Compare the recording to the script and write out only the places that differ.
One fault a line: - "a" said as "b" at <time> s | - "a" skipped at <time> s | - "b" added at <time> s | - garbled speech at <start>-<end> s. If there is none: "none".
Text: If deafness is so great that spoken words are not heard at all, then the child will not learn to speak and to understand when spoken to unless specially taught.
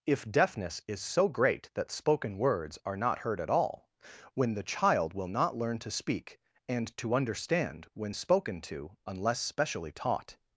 - "then" said as "when" at 4.3 s